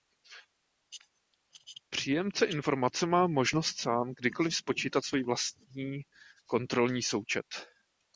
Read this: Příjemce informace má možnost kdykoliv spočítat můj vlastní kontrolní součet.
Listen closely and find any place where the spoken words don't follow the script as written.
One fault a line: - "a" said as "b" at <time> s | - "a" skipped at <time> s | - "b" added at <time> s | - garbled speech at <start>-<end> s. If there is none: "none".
- "sám" added at 3.8 s
- "můj" said as "svůj" at 5.0 s